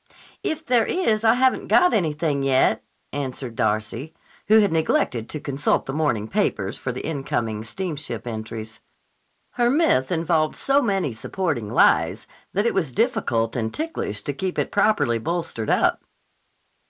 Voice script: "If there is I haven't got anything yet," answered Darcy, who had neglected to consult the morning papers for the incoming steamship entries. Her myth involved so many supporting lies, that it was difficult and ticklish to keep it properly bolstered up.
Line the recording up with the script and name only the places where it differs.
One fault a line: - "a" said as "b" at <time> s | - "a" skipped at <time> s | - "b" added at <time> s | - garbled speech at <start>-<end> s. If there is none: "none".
none